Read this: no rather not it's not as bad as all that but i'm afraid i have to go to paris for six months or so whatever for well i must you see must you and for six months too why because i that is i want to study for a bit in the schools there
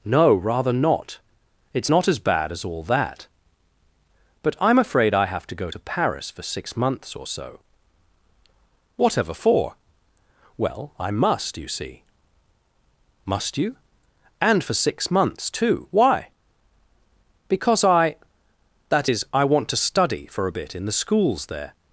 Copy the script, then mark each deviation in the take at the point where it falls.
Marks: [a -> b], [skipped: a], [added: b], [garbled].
no rather not it's not as bad as all that but i'm afraid i have to go to paris for six months or so whatever for well i must you see must you and for six months too why because i that is i want to study for a bit in the schools there